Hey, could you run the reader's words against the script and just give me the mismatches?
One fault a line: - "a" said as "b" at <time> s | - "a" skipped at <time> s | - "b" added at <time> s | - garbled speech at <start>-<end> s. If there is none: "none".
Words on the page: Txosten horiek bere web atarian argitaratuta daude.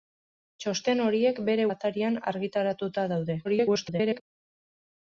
- "web" skipped at 1.7 s
- garbled speech at 3.4-4.2 s